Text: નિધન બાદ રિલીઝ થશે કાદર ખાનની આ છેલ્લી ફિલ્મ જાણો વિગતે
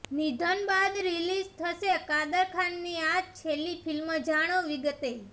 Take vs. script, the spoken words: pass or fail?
pass